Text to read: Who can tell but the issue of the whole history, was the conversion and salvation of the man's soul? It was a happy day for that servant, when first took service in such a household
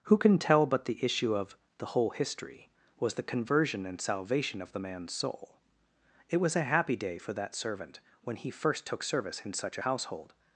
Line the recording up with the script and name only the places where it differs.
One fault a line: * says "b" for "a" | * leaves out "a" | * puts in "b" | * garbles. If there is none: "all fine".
* puts in "he"